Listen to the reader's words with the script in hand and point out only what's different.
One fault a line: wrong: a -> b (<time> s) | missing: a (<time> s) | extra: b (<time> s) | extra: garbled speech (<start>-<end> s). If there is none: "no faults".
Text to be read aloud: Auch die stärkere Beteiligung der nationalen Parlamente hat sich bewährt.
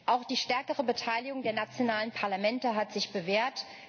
no faults